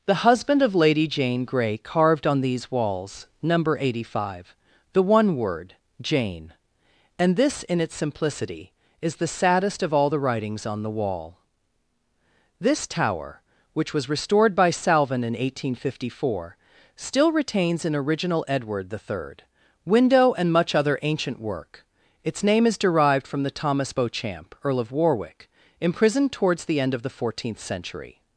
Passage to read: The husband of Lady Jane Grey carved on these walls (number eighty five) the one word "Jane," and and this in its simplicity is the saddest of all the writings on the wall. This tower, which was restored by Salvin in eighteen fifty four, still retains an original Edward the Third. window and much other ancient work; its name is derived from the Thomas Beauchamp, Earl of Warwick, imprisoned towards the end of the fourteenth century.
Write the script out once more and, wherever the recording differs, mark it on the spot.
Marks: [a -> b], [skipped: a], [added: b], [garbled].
The husband of Lady Jane Grey carved on these walls (number eighty five) the one word "Jane," and [skipped: and] this in its simplicity is the saddest of all the writings on the wall. This tower, which was restored by Salvin in eighteen fifty four, still retains an original Edward the Third. window and much other ancient work; its name is derived from the Thomas Beauchamp, Earl of Warwick, imprisoned towards the end of the fourteenth century.